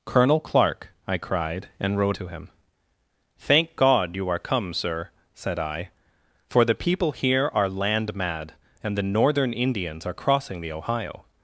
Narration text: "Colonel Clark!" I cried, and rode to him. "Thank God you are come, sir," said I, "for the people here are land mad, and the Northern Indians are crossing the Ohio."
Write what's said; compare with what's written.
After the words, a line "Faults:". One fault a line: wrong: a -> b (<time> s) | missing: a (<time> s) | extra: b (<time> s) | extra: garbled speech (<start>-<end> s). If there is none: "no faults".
"Colonel Clark!" I cried, and rode to him. "Thank God you are come, sir," said I, "for the people here are land mad, and the Northern Indians are crossing the Ohio."
Faults:
no faults